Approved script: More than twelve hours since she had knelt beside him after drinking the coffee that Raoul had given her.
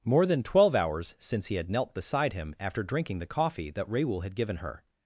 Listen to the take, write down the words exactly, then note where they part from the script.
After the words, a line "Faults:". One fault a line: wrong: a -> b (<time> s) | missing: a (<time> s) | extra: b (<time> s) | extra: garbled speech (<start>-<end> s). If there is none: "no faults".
More than twelve hours since he had knelt beside him after drinking the coffee that Raoul had given her.
Faults:
wrong: she -> he (1.4 s)